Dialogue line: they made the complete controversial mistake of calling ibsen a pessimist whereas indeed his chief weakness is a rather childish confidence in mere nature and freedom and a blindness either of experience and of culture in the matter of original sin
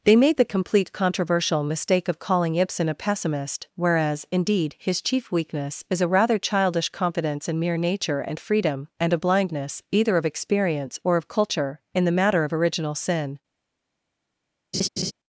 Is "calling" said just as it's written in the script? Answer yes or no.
yes